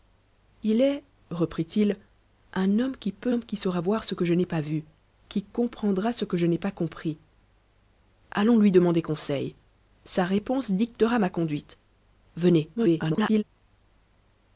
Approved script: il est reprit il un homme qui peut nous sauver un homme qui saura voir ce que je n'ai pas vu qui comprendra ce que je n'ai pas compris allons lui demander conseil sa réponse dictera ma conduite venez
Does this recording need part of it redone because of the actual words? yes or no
yes